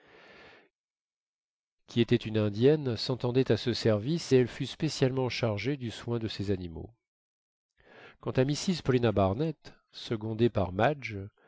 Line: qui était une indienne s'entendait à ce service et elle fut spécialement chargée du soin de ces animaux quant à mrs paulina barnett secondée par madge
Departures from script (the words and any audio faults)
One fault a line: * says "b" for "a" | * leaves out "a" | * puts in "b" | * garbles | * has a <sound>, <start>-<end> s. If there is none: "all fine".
all fine